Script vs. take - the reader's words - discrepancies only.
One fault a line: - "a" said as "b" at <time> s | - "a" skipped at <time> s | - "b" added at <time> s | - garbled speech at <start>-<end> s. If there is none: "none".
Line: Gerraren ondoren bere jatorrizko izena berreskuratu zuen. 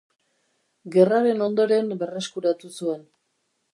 - "bere jatorrizko izena" skipped at 1.9 s